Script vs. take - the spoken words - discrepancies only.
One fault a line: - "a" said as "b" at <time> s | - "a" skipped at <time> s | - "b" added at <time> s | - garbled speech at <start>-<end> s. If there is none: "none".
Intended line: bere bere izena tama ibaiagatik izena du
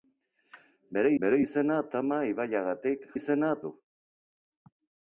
none